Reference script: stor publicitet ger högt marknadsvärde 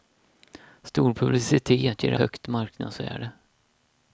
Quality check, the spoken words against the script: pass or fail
pass